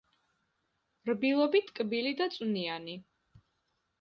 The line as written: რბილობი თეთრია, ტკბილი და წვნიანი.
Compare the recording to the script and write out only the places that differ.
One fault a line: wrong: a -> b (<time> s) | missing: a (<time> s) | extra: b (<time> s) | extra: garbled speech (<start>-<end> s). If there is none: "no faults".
missing: თეთრია (1.6 s)